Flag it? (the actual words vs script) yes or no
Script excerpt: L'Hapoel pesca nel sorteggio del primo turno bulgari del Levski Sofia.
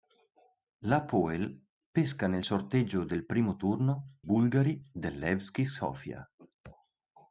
no